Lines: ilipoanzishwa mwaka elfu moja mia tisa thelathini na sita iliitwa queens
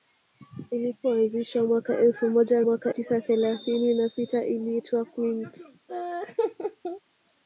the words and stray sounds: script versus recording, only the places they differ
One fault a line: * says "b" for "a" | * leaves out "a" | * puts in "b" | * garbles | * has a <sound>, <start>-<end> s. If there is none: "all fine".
* says "mwaka" for "mia"
* has a laugh, 5.9-7.0 s